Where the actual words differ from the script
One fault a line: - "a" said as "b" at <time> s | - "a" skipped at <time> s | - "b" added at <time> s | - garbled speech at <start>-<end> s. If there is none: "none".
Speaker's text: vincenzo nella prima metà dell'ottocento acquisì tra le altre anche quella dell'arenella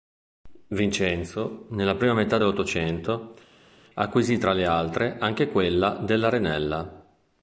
none